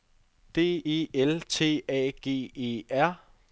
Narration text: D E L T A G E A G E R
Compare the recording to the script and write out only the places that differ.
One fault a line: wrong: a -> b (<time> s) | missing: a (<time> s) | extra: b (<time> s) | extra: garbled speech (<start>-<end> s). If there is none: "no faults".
missing: A G E (2.8 s)